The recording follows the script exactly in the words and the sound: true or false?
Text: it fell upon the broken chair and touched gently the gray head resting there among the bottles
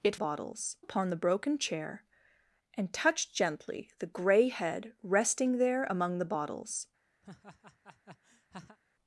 false